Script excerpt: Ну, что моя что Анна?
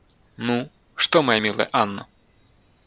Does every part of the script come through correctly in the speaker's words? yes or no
no